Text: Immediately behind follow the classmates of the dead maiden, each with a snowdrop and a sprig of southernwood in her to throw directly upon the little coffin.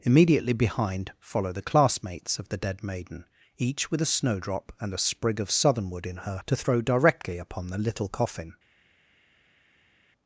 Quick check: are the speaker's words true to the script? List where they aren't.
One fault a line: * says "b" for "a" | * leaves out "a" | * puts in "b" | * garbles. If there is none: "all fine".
all fine